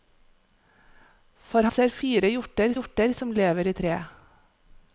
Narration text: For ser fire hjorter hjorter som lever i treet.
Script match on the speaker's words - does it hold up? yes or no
yes